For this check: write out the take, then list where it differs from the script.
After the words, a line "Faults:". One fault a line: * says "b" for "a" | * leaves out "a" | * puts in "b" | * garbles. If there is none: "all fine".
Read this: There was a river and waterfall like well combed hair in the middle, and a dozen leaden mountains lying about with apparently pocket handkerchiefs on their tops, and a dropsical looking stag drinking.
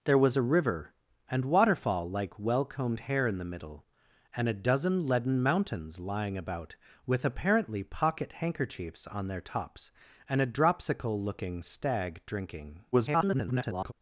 There was a river and waterfall like well combed hair in the middle, and a dozen leaden mountains lying about with apparently pocket handkerchiefs on their tops, and a dropsical looking stag drinking. [garbled]
Faults:
* garbles